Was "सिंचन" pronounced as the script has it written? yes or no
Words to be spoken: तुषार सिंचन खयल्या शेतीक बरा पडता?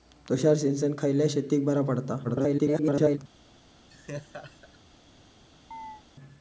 yes